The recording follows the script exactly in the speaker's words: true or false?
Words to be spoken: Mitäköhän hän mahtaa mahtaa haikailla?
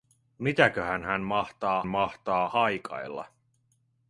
true